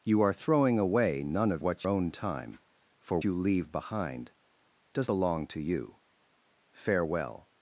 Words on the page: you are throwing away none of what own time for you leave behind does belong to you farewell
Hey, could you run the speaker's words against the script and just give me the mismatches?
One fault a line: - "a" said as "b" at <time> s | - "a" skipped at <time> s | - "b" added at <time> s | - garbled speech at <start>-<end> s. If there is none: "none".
none